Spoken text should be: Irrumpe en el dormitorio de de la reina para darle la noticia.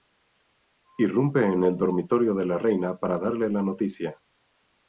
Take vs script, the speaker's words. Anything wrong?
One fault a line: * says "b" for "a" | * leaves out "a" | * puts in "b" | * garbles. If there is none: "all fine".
* leaves out "de"